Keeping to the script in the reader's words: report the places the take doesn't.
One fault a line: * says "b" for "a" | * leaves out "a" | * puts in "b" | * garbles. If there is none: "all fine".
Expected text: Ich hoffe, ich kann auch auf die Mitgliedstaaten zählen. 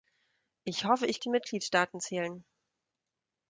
* leaves out "kann auch auf"